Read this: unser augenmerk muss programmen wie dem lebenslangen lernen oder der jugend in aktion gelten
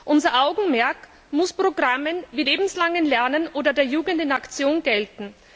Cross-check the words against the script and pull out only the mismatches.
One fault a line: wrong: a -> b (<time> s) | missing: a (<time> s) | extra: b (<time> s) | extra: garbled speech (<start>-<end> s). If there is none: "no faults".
missing: dem (2.5 s)